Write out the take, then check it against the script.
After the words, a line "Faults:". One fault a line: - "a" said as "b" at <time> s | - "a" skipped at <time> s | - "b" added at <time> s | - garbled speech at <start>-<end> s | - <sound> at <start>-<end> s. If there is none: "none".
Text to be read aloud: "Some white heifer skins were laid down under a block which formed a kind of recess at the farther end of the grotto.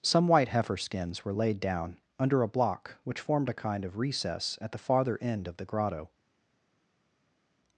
"Some white heifer skins were laid down under a block which formed a kind of recess at the farther end of the grotto.
Faults:
none